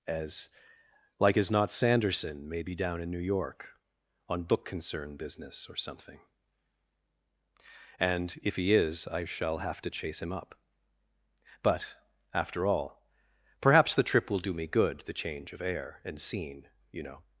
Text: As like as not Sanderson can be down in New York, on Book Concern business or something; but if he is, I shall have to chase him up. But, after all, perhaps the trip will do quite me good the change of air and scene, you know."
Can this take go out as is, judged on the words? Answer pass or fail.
fail